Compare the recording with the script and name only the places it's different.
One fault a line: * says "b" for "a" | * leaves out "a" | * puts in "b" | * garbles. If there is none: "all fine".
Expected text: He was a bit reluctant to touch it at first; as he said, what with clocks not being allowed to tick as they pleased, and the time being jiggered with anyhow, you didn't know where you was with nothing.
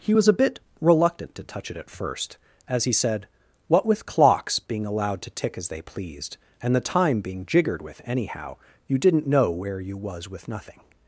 * leaves out "not"